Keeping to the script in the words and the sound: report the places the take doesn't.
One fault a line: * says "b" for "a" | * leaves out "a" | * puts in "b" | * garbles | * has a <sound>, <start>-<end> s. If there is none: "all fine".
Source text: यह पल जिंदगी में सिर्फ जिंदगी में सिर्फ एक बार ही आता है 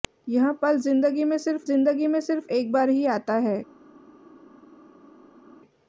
all fine